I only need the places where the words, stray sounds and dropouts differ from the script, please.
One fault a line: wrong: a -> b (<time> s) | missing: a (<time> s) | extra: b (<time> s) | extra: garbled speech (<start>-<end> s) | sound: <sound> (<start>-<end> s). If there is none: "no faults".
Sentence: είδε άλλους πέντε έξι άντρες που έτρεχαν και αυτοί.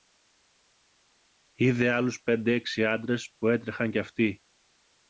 no faults